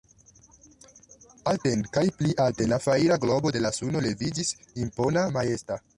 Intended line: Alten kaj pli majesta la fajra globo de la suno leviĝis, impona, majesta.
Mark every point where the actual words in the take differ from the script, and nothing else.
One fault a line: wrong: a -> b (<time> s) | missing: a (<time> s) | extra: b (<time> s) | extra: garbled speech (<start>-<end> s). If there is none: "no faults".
wrong: majesta -> alten (2.5 s)